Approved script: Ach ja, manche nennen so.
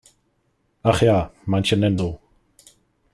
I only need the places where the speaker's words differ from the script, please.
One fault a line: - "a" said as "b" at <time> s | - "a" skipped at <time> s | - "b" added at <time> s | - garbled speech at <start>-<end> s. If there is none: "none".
none